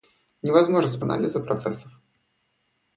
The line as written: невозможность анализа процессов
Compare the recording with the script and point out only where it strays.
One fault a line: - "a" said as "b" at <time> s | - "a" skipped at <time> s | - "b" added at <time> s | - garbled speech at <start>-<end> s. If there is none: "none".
none